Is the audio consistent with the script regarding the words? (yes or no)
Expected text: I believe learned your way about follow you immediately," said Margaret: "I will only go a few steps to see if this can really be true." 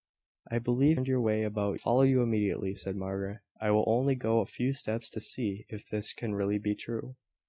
yes